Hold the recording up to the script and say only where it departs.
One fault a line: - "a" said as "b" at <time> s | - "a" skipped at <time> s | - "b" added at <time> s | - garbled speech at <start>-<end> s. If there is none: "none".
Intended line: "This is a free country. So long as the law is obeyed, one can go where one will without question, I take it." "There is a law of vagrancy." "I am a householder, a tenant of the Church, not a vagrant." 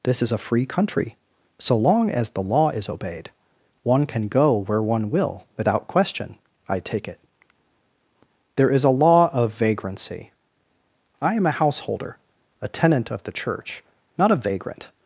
none